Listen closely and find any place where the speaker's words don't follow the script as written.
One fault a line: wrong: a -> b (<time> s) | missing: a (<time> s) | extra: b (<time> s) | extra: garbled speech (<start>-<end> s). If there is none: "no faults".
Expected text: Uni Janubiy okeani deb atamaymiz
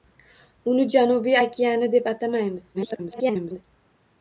extra: garbled speech (2.7-3.6 s)